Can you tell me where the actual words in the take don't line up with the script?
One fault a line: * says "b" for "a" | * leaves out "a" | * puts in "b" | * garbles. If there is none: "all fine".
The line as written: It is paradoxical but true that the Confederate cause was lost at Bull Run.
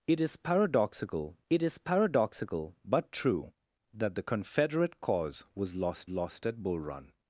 * puts in "it is paradoxical"
* puts in "lost"